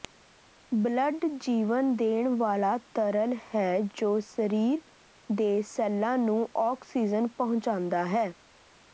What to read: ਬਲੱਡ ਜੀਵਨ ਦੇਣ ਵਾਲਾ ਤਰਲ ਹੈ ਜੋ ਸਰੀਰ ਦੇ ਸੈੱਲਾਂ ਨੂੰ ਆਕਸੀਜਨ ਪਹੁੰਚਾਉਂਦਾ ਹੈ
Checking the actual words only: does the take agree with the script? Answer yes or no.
yes